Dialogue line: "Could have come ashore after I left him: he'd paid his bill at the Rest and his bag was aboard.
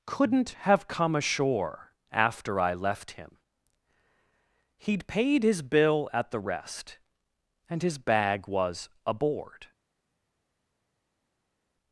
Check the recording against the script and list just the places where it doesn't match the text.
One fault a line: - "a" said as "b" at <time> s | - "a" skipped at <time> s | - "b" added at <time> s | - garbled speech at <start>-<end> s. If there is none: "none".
- "Could" said as "Couldn't" at 0.1 s